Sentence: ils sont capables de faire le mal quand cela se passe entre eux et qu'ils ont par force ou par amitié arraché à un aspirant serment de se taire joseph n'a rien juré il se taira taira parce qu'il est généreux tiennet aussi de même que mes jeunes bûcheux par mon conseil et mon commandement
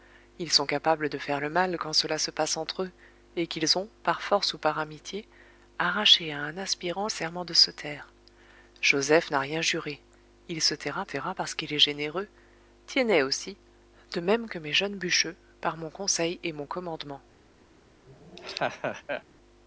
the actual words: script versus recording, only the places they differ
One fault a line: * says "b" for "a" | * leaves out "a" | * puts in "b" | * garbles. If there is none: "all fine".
all fine